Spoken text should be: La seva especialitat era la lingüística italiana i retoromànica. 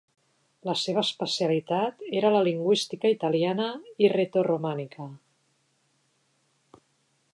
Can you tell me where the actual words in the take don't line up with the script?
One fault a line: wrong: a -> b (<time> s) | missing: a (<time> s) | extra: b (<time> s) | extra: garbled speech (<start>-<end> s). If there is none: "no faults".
no faults